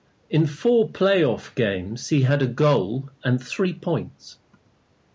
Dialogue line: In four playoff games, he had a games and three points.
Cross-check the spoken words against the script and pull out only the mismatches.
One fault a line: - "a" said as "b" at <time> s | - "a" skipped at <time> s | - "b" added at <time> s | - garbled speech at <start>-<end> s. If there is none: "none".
- "games" said as "goal" at 2.5 s